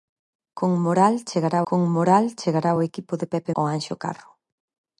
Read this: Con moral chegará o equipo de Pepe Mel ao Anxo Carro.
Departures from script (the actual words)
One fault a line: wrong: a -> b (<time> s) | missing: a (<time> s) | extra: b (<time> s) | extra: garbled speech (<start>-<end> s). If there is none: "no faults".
extra: con moral chegará (1.7 s)
missing: Mel (3.5 s)